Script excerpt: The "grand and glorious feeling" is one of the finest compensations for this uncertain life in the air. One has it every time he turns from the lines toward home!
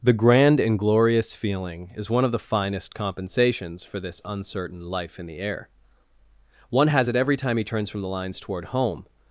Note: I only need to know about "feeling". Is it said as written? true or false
true